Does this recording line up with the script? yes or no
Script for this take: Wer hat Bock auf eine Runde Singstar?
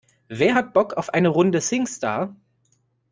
yes